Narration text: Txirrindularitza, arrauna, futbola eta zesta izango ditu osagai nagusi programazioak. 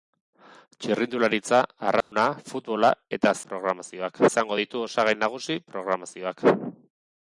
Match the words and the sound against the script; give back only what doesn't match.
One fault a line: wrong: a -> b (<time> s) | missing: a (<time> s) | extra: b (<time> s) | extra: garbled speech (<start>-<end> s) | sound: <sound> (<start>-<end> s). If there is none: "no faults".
sound: dropout (2.0-2.1 s)
wrong: zesta -> programazioak (3.5 s)